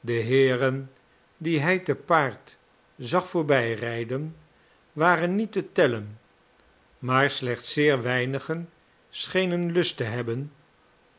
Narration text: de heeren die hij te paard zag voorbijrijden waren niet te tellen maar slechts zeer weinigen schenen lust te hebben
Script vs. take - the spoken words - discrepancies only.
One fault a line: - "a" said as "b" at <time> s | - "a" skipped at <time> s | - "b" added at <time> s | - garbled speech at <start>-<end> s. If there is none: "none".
none